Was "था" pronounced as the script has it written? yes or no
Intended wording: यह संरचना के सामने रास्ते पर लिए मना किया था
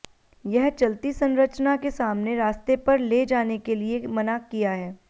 no